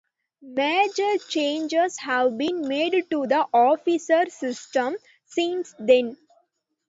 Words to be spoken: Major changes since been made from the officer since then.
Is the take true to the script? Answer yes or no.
no